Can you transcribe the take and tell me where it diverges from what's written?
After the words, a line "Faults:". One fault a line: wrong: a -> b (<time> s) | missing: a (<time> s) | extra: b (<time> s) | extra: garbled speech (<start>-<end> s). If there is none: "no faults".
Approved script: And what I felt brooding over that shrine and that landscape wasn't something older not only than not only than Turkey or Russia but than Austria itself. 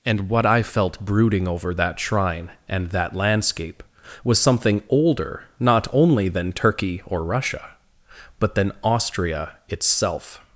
And what I felt brooding over that shrine and that landscape was something older not only than Turkey or Russia but than Austria itself.
Faults:
wrong: wasn't -> was (4.2 s)
missing: not only than (6.5 s)